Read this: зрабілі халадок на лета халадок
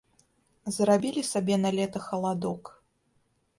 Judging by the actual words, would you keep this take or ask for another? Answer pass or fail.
fail